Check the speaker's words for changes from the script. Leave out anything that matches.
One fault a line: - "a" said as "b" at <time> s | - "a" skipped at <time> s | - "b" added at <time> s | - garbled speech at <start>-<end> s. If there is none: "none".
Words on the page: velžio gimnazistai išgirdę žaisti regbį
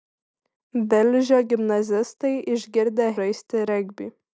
none